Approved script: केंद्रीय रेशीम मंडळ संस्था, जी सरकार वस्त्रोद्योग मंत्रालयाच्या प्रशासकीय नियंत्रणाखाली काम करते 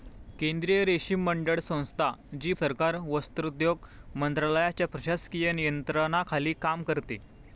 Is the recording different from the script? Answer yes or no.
no